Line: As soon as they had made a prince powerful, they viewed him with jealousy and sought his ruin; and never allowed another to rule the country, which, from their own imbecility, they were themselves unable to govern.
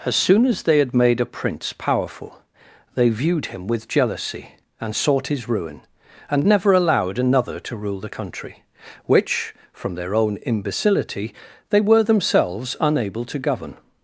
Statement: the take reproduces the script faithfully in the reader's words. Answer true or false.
true